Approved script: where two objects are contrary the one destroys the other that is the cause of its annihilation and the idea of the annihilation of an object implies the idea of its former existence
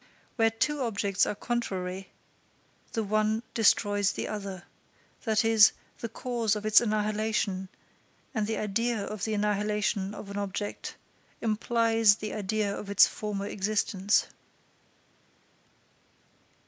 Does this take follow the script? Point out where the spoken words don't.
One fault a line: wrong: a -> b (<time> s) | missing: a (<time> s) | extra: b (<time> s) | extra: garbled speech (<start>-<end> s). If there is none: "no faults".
no faults